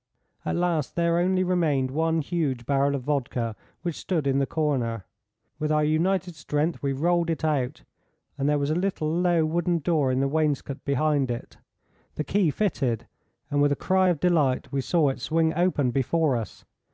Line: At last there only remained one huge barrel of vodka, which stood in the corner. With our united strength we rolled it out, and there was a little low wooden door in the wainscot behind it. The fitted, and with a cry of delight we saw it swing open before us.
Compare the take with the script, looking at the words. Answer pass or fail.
fail